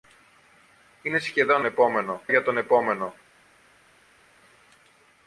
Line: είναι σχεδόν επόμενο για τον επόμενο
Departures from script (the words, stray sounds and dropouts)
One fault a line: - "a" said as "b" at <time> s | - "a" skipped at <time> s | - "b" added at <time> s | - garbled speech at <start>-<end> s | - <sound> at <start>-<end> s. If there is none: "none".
none